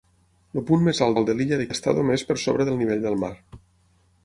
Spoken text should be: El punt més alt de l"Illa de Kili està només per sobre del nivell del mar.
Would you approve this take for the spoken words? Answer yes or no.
no